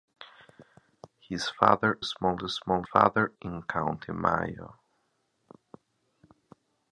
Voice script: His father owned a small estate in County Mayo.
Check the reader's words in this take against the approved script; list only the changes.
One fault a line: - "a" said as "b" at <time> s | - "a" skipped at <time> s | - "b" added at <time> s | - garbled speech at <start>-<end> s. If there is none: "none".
- "owned" said as "small" at 2.0 s
- "estate" said as "father" at 2.8 s